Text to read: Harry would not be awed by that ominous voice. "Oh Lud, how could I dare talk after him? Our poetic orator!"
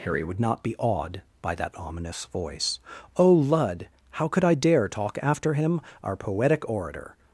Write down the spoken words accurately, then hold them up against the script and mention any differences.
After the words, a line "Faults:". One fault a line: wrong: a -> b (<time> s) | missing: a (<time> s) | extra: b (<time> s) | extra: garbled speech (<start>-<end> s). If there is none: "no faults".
Harry would not be awed by that ominous voice. "Oh Lud, how could I dare talk after him? Our poetic orator!"
Faults:
no faults